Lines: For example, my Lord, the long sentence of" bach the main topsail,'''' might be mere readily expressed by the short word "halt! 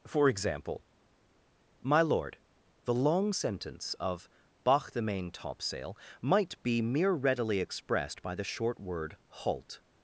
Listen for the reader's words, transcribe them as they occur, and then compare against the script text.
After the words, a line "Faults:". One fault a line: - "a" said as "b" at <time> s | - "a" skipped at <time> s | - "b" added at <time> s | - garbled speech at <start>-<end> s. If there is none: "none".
For example, my Lord, the long sentence of" bach the main topsail,'''' might be mere readily expressed by the short word "halt!
Faults:
none